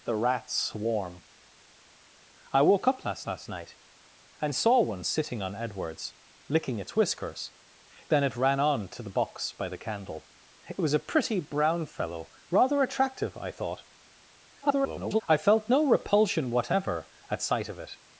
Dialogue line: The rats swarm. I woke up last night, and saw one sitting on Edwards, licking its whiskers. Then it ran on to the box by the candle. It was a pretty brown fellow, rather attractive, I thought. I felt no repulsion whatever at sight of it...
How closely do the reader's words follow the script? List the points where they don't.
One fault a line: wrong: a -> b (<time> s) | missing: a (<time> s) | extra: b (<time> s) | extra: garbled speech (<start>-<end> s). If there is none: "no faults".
extra: last (3.3 s)
extra: garbled speech (14.6-15.2 s)